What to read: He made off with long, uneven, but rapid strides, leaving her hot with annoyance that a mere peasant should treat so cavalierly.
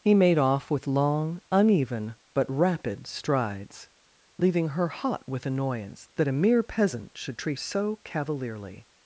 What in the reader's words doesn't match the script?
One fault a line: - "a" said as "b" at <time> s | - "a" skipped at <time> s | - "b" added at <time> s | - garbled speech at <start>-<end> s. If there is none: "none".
none